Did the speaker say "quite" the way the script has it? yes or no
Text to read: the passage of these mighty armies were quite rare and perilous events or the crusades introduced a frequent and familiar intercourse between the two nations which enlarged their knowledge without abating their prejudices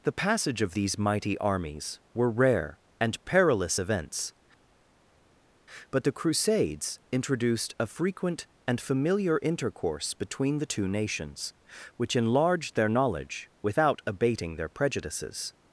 no